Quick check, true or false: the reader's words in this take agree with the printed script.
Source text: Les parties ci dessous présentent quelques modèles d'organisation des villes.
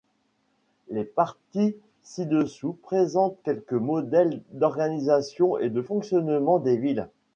false